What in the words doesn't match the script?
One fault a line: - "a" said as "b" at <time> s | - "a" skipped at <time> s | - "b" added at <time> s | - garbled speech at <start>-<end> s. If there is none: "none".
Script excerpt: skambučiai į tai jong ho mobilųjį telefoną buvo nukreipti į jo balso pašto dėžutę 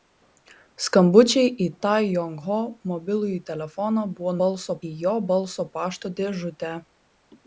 - "nukreipti" said as "balso" at 4.4 s